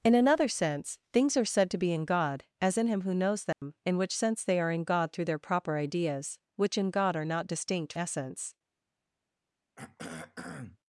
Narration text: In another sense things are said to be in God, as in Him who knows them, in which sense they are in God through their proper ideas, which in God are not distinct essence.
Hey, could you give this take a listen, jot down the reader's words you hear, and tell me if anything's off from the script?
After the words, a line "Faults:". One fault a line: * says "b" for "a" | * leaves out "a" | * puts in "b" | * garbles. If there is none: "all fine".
In another sense things are said to be in God, as in Him who knows them, in which sense they are in God through their proper ideas, which in God are not distinct essence.
Faults:
all fine